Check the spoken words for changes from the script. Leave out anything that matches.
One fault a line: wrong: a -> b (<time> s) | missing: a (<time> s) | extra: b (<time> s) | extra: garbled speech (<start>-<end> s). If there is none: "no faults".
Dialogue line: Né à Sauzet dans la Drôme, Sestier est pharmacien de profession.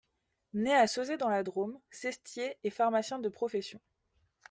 no faults